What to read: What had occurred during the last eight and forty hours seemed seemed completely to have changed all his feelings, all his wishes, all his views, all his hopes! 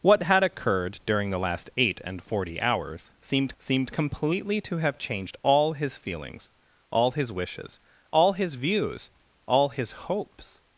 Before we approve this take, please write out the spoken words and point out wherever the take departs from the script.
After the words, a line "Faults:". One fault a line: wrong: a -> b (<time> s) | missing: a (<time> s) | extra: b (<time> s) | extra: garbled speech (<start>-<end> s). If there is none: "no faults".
What had occurred during the last eight and forty hours seemed seemed completely to have changed all his feelings, all his wishes, all his views, all his hopes!
Faults:
no faults